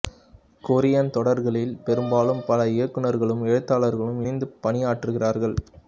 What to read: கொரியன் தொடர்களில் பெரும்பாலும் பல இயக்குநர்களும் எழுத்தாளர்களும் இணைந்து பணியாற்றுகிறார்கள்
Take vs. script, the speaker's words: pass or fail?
pass